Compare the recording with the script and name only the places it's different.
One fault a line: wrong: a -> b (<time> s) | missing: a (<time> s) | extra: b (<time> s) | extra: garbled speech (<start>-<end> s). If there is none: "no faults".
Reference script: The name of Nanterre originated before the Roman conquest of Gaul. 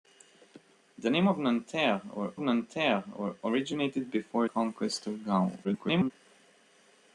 extra: Nanterre (2.4 s)
missing: the Roman (4.5 s)
extra: garbled speech (5.6-6.1 s)